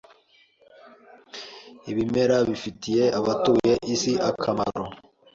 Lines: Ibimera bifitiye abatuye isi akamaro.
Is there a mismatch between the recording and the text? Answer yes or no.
no